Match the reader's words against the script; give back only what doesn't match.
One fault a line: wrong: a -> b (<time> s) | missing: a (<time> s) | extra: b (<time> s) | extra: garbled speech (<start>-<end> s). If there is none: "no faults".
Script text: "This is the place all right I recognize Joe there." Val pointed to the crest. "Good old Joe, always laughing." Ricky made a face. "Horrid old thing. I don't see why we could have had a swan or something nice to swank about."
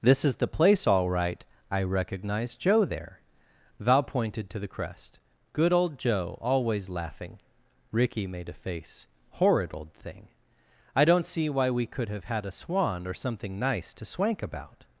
no faults